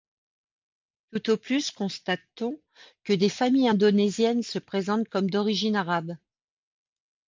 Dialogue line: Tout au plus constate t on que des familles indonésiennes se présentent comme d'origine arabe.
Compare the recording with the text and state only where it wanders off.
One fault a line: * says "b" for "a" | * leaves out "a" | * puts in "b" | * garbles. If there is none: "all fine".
all fine